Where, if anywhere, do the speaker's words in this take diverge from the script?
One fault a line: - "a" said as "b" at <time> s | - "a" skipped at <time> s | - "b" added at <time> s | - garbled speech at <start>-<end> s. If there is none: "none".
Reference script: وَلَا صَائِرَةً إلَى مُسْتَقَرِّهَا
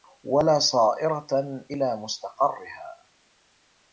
none